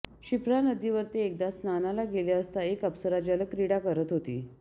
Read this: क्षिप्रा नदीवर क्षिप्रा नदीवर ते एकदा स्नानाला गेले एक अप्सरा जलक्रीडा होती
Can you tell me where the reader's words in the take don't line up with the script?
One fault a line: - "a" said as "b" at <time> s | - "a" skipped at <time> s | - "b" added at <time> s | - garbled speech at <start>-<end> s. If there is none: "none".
- "क्षिप्रा नदीवर" skipped at 1.0 s
- "असता" added at 2.4 s
- "करत" added at 3.8 s